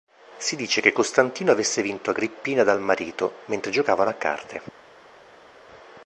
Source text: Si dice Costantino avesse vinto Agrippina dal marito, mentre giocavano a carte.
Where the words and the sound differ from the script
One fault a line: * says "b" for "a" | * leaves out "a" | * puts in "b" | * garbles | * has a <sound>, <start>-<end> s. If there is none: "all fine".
* puts in "che"